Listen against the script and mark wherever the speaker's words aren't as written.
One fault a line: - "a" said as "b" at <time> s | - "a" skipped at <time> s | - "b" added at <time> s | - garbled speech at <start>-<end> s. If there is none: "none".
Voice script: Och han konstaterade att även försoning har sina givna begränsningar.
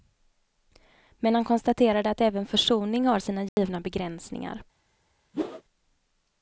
- "Och" said as "Men" at 1.2 s